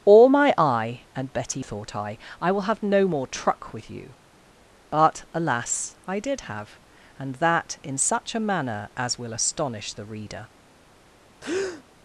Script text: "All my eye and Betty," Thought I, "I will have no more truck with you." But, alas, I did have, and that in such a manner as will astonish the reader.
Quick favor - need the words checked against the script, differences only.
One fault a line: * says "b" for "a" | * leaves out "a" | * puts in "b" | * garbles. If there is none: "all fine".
all fine